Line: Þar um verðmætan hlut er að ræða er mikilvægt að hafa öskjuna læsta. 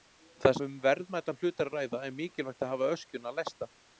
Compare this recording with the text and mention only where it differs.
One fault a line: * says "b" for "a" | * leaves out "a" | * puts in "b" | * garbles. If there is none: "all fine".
all fine